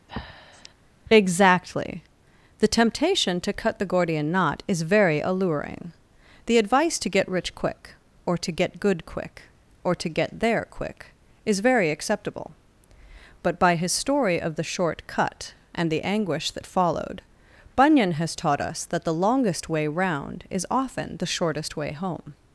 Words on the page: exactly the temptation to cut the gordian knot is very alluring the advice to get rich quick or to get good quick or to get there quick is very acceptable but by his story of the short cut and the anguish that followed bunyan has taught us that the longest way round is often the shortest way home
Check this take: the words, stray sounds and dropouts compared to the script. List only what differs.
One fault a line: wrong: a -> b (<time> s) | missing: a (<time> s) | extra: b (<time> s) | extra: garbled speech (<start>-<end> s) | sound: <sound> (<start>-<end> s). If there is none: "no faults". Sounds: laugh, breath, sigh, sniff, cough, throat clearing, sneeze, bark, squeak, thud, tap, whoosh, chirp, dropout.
sound: breath (0.1-0.7 s)